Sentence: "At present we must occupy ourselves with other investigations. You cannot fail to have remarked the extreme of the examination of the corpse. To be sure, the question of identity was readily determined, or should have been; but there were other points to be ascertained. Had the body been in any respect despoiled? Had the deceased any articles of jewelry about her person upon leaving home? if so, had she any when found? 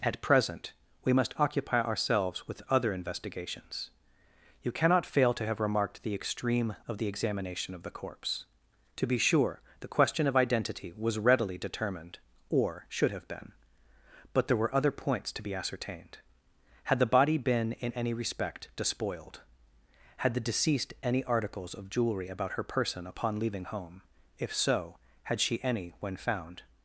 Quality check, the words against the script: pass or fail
pass